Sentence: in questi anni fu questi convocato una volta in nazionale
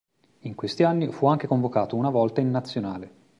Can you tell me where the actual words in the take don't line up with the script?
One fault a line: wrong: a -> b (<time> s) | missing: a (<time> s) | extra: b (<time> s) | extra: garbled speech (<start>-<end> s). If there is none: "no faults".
wrong: questi -> anche (1.3 s)